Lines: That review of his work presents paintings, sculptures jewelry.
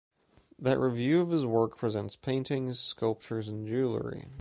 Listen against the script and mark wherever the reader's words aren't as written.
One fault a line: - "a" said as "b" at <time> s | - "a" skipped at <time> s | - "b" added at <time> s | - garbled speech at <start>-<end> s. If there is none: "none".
- "and" added at 3.5 s